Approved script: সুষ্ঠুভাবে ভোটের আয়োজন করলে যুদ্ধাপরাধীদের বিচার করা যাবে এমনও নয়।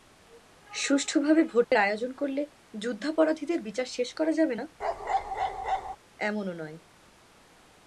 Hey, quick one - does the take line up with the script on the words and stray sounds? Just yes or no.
no